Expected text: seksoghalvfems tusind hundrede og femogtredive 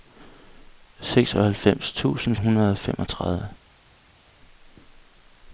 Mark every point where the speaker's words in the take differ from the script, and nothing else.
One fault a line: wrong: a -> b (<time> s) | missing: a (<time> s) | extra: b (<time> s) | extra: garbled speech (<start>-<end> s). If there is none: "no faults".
no faults